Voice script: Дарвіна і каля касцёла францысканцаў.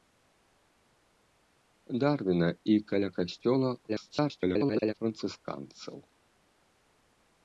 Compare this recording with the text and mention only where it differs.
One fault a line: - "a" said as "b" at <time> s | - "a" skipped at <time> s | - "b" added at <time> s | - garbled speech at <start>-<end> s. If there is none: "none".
- garbled speech at 3.9-4.9 s